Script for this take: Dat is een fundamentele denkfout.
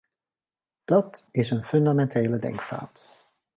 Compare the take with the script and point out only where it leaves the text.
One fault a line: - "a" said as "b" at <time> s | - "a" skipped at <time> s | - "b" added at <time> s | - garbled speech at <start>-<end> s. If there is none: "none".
none